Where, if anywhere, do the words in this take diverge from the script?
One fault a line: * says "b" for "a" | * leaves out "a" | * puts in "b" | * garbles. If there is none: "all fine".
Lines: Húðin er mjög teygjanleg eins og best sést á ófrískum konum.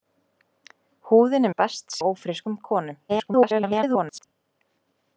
* leaves out "mjög teygjanleg eins"
* leaves out "sést"
* garbles